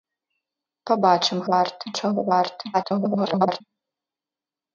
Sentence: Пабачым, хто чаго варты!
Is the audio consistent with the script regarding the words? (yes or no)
no